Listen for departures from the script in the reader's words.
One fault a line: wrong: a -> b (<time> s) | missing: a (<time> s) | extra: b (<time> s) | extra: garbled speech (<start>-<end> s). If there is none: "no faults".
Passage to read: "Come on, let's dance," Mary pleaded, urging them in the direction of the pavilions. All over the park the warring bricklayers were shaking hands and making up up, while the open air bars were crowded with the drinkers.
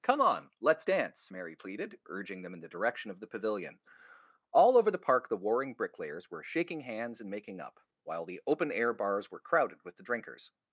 wrong: pavilions -> pavilion (3.3 s)
missing: up (7.8 s)